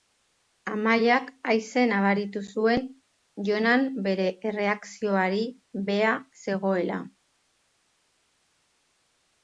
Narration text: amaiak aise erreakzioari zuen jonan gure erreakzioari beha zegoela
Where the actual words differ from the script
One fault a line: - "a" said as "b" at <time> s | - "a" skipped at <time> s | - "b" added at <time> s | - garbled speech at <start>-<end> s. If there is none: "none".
- "erreakzioari" said as "nabaritu" at 1.9 s
- "gure" said as "bere" at 4.1 s